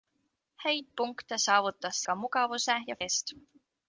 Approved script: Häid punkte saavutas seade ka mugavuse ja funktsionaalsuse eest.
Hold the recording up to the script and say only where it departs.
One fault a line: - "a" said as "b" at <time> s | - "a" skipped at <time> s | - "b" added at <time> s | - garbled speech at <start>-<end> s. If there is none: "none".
- "seade" skipped at 2.0 s
- "funktsionaalsuse" skipped at 3.0 s